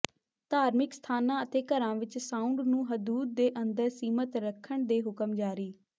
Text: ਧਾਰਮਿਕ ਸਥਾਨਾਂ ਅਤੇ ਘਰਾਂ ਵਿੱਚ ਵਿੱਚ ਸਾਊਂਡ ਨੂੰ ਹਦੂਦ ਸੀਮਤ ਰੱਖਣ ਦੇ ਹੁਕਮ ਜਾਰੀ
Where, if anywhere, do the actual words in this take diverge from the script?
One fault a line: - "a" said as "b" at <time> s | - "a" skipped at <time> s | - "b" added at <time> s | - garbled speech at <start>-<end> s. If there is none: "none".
- "ਵਿੱਚ" skipped at 2.2 s
- "ਦੇ ਅੰਦਰ" added at 3.4 s